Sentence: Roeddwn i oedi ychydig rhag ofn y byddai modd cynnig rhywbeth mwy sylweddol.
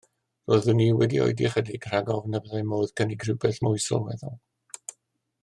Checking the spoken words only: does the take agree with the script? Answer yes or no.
no